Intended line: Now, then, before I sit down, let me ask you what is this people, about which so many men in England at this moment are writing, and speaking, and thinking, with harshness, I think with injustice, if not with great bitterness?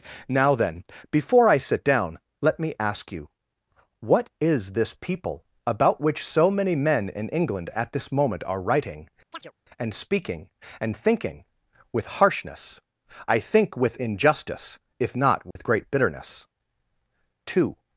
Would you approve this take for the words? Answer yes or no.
no